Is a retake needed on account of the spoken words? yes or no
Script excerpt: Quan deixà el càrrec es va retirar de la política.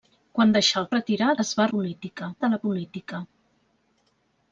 yes